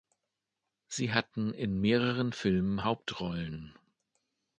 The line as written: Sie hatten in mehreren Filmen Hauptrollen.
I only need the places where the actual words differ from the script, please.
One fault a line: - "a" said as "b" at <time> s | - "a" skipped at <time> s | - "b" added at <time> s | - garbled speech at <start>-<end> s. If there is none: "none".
none